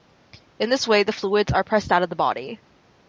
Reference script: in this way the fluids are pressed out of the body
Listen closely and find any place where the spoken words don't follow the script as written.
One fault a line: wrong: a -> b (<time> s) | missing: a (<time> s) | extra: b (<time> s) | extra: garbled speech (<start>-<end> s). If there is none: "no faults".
no faults